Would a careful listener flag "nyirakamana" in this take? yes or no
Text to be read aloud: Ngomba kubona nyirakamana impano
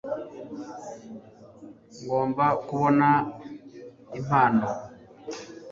yes